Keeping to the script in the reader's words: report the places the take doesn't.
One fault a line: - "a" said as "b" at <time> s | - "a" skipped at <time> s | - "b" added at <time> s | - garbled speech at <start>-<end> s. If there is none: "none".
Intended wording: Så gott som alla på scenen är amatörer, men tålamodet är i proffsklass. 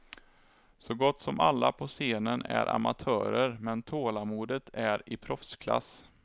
none